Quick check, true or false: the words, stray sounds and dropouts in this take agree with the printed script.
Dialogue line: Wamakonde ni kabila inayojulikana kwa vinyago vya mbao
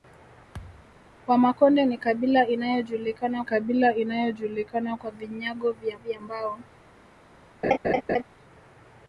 false